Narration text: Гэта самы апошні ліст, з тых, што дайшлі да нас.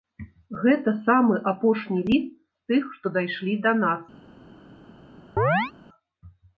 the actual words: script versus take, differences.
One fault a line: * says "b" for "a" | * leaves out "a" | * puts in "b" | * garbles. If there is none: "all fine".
all fine